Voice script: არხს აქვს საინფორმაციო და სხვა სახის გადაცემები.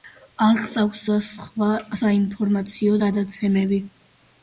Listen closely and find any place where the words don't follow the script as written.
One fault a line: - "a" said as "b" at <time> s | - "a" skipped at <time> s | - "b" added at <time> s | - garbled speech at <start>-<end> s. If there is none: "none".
- "საინფორმაციო" skipped at 1.0 s
- "სახის" said as "საინფორმაციო" at 2.0 s